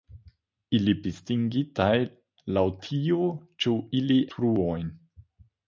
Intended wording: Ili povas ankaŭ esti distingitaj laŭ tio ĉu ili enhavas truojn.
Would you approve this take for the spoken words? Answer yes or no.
no